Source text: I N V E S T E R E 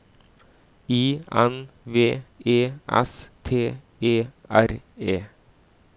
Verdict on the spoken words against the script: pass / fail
pass